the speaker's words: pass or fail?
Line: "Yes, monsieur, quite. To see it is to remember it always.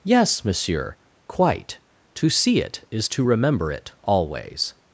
pass